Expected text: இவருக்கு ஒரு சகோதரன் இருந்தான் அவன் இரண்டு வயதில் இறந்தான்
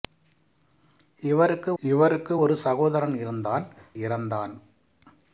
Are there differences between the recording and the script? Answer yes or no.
yes